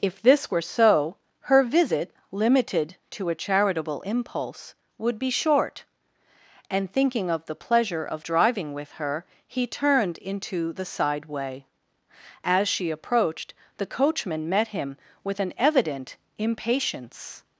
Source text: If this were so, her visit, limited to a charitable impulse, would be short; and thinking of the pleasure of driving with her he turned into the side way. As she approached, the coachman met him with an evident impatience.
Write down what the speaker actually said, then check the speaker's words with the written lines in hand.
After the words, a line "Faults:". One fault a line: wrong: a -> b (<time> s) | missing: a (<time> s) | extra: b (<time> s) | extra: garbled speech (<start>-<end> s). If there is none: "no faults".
If this were so, her visit, limited to a charitable impulse, would be short; and thinking of the pleasure of driving with her he turned into the side way. As she approached, the coachman met him with an evident impatience.
Faults:
no faults